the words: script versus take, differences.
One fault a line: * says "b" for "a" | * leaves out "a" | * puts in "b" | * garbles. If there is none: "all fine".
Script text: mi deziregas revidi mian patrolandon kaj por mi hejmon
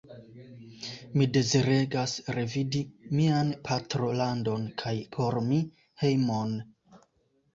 all fine